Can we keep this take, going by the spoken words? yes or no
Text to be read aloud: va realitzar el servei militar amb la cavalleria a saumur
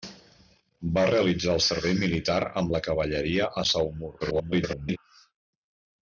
no